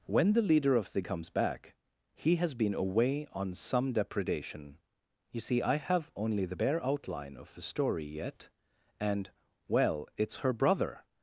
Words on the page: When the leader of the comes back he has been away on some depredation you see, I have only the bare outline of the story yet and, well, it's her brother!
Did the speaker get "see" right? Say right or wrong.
right